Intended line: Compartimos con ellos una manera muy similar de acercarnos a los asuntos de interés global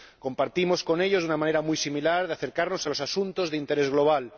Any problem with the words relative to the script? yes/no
no